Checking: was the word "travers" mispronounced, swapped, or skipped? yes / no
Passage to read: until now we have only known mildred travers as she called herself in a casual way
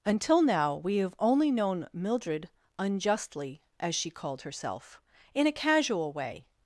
yes